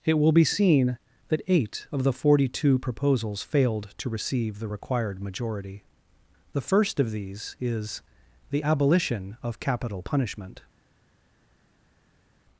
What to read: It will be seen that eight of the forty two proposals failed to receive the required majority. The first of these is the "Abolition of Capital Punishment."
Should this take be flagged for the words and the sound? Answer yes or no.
no